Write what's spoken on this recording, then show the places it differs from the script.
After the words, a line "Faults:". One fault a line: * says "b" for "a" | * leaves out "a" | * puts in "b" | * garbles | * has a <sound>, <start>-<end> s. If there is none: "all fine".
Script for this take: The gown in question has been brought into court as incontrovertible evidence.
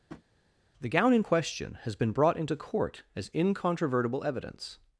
The gown in question has been brought into court as incontrovertible evidence.
Faults:
* has a tap, 0.1-0.2 s